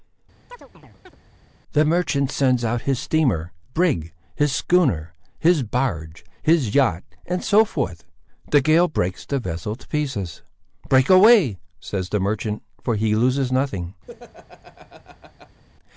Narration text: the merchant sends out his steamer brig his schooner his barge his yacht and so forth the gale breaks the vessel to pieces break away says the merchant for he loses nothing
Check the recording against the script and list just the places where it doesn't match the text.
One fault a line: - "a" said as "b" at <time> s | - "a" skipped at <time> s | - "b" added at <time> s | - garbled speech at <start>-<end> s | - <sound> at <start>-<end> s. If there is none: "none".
- chirp at 0.5-1.2 s
- laugh at 14.1-15.6 s